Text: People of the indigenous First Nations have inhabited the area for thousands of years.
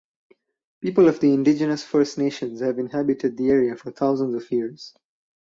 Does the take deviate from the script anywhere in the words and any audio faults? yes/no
no